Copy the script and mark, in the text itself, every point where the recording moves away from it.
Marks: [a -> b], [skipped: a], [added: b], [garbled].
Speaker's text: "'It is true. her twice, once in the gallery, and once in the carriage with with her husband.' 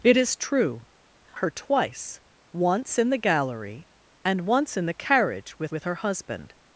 "'It is true. her twice, once in the gallery, and once in the carriage with with her husband.'